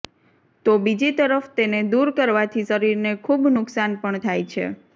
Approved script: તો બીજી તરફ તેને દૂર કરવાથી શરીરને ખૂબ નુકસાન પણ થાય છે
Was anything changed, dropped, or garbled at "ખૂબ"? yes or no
no